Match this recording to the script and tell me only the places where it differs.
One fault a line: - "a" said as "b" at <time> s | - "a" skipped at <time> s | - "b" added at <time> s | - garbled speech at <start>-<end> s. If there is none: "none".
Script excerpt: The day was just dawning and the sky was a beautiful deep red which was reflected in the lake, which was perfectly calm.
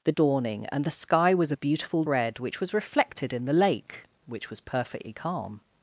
- "day was just" skipped at 0.1 s
- "deep" skipped at 2.0 s